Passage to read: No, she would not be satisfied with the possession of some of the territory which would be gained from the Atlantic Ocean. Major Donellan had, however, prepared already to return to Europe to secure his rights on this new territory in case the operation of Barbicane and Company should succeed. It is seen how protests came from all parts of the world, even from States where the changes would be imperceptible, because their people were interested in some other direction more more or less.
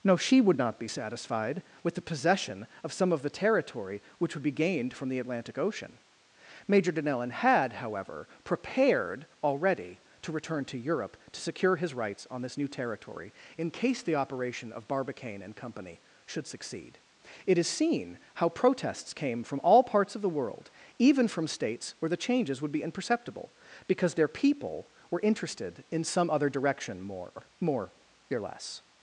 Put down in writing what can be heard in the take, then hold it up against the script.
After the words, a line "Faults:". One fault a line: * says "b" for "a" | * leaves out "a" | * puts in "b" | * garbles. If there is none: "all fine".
No, she would not be satisfied with the possession of some of the territory which would be gained from the Atlantic Ocean. Major Donellan had, however, prepared already to return to Europe to secure his rights on this new territory in case the operation of Barbicane and Company should succeed. It is seen how protests came from all parts of the world, even from States where the changes would be imperceptible, because their people were interested in some other direction more more or less.
Faults:
all fine